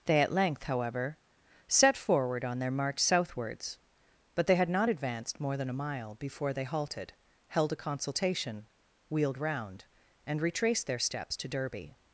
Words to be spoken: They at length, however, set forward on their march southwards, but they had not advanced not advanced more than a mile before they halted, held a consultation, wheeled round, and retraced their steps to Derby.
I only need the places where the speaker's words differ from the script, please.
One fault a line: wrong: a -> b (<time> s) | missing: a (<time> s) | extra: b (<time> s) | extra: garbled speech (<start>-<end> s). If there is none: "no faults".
missing: not advanced (5.4 s)